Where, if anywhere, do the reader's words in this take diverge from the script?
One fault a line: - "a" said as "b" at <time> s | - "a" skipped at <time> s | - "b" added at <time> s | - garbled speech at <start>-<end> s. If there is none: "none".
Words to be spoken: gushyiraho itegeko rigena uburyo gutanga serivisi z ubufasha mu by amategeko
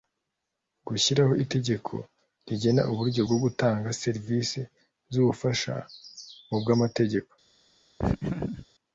- "bwo" added at 3.2 s